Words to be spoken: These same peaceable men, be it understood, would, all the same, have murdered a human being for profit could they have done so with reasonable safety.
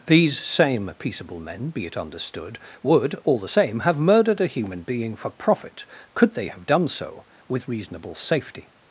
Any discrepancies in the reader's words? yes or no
no